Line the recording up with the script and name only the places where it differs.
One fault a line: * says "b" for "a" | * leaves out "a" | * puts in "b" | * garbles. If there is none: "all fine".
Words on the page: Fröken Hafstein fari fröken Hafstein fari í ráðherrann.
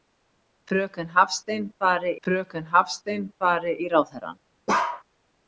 all fine